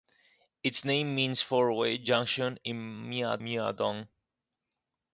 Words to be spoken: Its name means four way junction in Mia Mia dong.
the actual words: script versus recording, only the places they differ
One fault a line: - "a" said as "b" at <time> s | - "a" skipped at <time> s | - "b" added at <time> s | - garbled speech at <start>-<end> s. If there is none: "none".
none